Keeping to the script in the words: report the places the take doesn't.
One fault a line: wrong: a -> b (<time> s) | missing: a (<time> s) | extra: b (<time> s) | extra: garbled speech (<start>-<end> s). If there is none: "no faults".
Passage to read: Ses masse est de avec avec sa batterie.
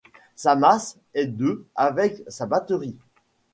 wrong: Ses -> Sa (0.3 s)
missing: avec (2.2 s)